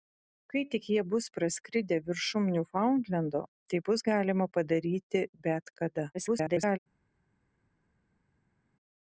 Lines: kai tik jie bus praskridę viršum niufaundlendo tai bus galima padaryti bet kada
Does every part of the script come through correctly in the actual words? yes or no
no